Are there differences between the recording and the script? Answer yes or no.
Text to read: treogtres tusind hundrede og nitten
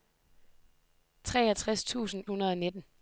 no